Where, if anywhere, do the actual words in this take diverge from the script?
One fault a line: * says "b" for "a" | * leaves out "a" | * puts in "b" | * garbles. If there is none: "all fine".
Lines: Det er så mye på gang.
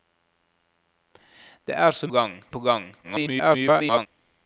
* says "gang" for "mye"
* garbles